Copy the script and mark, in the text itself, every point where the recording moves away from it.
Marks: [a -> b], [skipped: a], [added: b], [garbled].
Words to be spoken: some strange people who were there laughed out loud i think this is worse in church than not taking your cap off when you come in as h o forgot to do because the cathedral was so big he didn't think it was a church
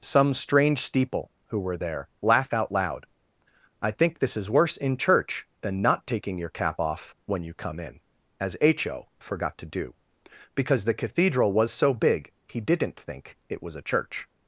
some strange [people -> steeple] who were there [laughed -> laugh] out loud i think this is worse in church than not taking your cap off when you come in as h o forgot to do because the cathedral was so big he didn't think it was a church